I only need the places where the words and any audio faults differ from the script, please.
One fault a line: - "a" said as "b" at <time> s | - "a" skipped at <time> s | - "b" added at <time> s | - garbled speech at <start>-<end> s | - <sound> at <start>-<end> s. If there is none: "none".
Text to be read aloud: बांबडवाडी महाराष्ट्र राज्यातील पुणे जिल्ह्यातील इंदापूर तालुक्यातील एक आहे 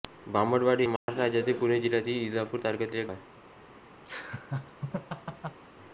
- dropout at 1.0-1.1 s
- laugh at 4.1-5.6 s